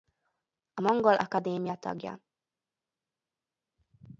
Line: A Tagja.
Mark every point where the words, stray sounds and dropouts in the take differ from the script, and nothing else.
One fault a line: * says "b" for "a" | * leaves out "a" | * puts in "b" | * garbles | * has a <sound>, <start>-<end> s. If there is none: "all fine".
* puts in "Mongol Akadémia"